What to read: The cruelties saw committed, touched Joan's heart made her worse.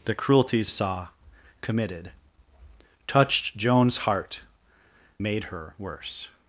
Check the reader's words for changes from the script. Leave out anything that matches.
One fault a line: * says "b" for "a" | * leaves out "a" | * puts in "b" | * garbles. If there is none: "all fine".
all fine